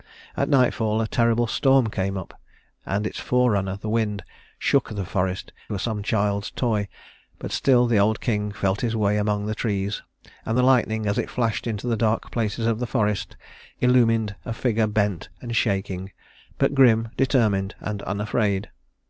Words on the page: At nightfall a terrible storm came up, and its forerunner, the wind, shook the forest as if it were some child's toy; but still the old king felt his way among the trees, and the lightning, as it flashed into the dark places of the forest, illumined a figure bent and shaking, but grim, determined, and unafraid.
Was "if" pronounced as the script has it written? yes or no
no